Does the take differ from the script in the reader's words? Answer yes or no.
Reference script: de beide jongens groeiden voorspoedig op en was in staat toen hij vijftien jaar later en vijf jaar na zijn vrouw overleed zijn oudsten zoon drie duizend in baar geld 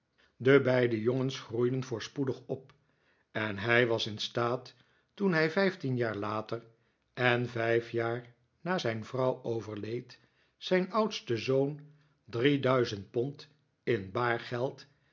yes